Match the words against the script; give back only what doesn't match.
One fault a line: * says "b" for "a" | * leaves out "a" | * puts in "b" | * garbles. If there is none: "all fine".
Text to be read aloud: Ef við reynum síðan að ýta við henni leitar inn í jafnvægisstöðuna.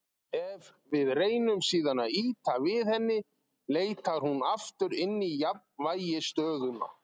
* puts in "hún aftur"